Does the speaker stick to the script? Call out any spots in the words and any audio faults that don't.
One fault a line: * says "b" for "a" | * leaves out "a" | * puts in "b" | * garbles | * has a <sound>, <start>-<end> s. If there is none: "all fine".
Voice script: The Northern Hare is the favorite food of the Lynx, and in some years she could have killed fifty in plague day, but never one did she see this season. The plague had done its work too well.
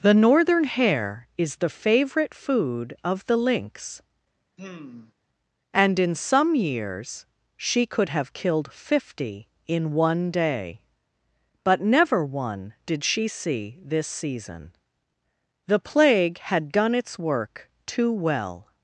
* has a sigh, 4.6-5.1 s
* says "one" for "plague"